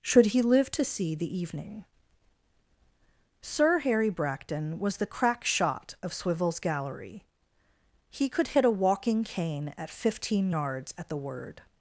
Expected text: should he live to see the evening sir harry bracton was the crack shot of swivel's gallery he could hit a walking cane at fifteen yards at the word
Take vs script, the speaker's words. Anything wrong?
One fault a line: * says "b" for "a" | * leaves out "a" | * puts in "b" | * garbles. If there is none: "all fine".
all fine